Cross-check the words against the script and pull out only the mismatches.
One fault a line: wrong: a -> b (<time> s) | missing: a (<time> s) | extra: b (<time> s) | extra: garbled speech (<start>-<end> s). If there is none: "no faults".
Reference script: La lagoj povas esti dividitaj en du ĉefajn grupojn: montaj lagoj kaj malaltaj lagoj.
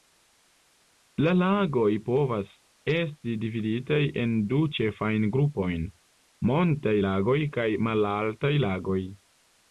no faults